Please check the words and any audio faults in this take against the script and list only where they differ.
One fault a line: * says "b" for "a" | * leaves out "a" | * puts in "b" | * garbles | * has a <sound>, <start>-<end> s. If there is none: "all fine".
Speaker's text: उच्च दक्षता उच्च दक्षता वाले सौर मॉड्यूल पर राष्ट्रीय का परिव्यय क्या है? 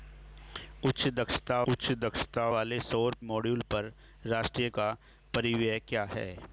all fine